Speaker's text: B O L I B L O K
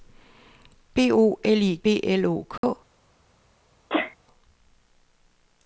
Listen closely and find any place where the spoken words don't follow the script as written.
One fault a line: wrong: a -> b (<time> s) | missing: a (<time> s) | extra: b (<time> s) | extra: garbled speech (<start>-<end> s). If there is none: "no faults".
no faults